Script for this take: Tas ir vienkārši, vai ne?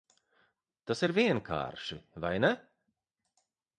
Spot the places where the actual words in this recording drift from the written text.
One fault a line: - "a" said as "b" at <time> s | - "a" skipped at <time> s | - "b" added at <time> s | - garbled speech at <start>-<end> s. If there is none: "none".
none